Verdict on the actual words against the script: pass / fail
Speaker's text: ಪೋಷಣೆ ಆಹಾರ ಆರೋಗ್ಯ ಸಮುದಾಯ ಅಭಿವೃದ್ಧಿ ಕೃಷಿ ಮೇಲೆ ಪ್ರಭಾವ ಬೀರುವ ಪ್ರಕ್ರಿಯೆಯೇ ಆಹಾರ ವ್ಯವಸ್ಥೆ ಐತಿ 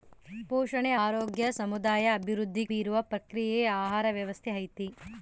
fail